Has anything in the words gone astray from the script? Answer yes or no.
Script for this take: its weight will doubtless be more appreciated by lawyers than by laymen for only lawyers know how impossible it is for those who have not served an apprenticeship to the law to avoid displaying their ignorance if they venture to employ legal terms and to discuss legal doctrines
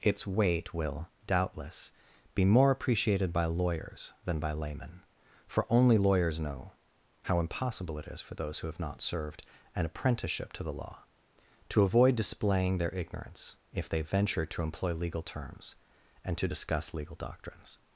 no